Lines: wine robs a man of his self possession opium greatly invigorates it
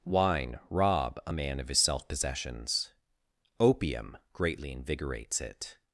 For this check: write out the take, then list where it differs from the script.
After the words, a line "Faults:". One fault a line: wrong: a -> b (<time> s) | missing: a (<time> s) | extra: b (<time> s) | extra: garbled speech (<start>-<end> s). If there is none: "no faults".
wine rob a man of his self possessions opium greatly invigorates it
Faults:
wrong: robs -> rob (0.7 s)
wrong: possession -> possessions (2.1 s)